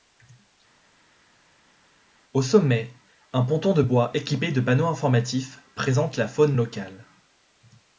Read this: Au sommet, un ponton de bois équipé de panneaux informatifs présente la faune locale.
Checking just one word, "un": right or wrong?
right